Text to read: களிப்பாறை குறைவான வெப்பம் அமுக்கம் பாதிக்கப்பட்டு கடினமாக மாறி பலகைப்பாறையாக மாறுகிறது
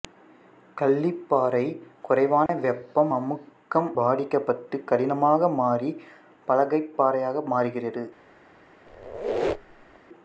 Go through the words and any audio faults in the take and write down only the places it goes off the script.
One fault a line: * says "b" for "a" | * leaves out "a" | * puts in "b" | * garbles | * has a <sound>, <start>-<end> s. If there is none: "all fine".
* has a dropout, 2.5-2.5 s
* has a squeak, 8.9-10.0 s